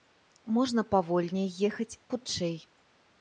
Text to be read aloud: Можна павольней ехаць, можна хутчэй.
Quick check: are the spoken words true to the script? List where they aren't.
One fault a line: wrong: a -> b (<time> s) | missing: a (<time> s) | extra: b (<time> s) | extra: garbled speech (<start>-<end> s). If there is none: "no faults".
missing: можна (1.9 s)